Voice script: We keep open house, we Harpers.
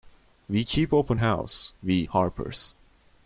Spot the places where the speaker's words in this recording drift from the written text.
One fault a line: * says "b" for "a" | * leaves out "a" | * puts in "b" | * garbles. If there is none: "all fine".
all fine